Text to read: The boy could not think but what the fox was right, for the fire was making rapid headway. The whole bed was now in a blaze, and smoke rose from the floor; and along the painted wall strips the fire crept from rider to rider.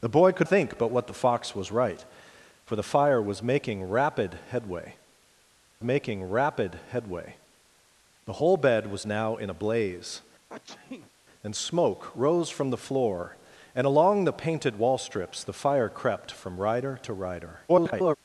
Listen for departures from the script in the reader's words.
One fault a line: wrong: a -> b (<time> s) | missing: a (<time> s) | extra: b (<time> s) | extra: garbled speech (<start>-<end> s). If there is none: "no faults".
missing: not (0.5 s)
extra: making rapid headway (5.8 s)
extra: garbled speech (17.7-18.2 s)